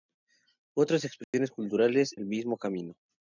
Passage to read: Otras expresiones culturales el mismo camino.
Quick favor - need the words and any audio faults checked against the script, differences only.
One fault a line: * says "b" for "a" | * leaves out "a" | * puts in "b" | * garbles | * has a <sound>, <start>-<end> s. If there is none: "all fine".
* has a dropout, 1.2-1.3 s